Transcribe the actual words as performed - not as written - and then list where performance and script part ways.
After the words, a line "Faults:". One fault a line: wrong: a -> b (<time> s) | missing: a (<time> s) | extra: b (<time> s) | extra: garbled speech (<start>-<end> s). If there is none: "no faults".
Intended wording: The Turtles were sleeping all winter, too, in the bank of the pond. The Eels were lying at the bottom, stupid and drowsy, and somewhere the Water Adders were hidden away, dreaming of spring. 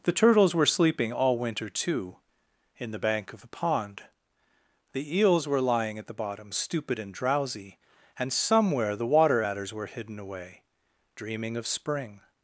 The Turtles were sleeping all winter, too, in the bank of the pond. The Eels were lying at the bottom, stupid and drowsy, and somewhere the Water Adders were hidden away, dreaming of spring.
Faults:
no faults